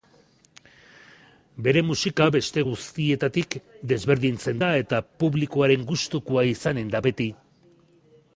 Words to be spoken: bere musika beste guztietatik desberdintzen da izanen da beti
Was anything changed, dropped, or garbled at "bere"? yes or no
no